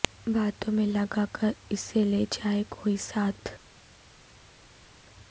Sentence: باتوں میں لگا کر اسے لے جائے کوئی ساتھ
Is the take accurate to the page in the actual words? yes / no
yes